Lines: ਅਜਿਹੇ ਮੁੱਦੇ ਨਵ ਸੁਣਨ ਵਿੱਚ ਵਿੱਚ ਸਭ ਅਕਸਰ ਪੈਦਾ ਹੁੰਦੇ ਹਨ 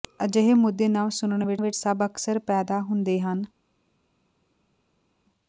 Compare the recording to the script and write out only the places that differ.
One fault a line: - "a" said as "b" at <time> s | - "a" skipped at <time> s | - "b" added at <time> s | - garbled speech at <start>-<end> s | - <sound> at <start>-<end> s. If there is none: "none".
none